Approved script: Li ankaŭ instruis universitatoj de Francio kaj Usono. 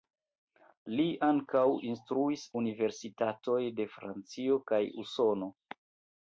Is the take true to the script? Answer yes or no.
yes